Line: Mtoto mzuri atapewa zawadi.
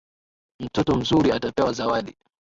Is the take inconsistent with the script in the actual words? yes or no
no